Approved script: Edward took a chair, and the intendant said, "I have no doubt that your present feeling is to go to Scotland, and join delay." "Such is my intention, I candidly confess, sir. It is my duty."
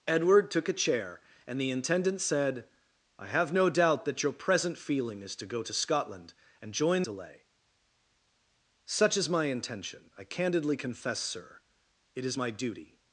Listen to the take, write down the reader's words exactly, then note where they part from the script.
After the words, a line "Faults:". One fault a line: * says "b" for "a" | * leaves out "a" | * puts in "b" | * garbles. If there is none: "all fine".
Edward took a chair, and the intendant said, "I have no doubt that your present feeling is to go to Scotland, and join delay." "Such is my intention, I candidly confess, sir. It is my duty."
Faults:
all fine